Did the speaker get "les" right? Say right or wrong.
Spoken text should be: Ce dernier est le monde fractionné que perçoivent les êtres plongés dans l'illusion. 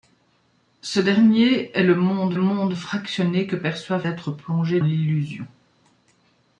wrong